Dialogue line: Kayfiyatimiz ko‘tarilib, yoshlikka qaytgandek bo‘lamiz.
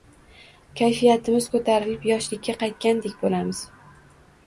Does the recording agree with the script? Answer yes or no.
yes